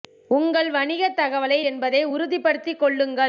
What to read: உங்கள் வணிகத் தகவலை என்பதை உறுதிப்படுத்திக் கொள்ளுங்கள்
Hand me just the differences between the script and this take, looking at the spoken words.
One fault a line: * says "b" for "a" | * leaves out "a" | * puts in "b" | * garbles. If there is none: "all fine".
all fine